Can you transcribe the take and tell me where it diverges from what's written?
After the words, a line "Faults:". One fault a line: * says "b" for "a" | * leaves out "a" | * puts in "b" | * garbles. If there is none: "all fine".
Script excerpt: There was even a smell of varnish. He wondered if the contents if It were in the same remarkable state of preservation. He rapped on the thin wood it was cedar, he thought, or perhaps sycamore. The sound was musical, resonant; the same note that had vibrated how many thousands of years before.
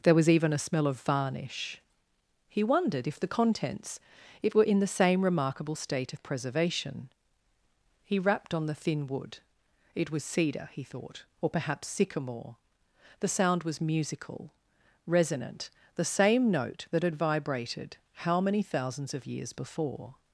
There was even a smell of varnish. He wondered if the contents It were in the same remarkable state of preservation. He rapped on the thin wood it was cedar, he thought, or perhaps sycamore. The sound was musical, resonant; the same note that had vibrated how many thousands of years before.
Faults:
* leaves out "if"